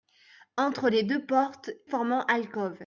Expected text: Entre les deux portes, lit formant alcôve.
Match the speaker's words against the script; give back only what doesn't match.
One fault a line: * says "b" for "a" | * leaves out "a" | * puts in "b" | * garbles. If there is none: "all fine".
* leaves out "lit"